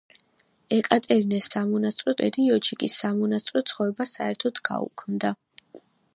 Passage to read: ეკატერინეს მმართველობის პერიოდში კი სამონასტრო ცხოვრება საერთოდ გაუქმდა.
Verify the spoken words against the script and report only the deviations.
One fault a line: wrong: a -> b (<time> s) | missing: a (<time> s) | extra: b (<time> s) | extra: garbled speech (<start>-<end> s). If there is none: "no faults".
wrong: მმართველობის -> სამონასტრო (1.5 s)